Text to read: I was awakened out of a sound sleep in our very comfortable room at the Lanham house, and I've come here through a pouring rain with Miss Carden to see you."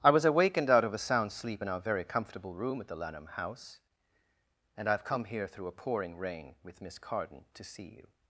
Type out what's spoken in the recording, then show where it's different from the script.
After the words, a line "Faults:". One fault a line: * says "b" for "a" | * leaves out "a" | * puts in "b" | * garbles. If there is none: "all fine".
I was awakened out of a sound sleep in our very comfortable room at the Lanham house, and I've come here through a pouring rain with Miss Carden to see you."
Faults:
all fine